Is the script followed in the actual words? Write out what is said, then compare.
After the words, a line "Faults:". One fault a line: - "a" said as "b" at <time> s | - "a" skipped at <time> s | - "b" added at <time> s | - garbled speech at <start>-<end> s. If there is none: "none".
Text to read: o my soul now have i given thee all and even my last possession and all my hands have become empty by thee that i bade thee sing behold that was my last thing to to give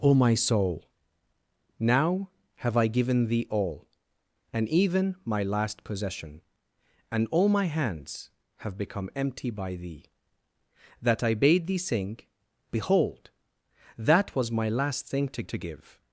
o my soul now have i given thee all and even my last possession and all my hands have become empty by thee that i bade thee sing behold that was my last thing to to give
Faults:
none